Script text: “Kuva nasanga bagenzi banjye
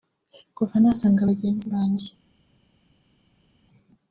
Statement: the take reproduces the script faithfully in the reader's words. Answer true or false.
true